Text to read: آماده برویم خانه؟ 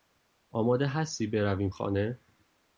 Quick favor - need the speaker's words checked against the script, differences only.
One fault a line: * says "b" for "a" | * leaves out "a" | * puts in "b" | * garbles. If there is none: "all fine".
* puts in "هستی"